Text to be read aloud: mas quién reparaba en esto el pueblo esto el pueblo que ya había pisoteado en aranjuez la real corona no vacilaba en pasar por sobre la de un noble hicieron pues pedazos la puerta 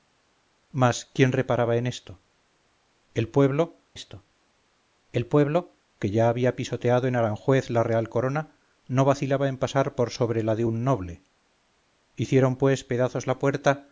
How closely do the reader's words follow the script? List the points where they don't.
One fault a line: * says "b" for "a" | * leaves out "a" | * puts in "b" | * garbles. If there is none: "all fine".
all fine